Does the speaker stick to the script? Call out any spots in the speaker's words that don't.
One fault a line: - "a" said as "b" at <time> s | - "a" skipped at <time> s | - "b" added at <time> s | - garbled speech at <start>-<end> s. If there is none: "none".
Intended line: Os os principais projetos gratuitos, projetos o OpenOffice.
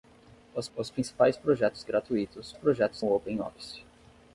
none